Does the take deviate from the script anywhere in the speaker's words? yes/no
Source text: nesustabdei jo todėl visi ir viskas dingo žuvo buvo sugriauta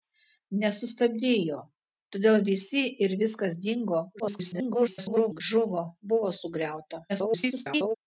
yes